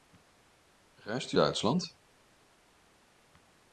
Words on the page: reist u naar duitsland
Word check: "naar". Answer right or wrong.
wrong